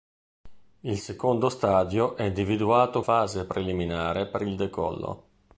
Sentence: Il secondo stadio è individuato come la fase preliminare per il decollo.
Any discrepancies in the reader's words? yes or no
yes